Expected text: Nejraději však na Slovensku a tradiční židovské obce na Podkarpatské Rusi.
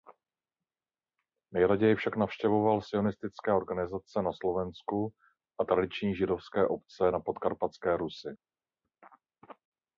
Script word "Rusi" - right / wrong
right